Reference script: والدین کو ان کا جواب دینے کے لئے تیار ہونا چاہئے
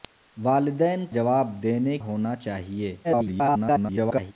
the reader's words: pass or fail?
fail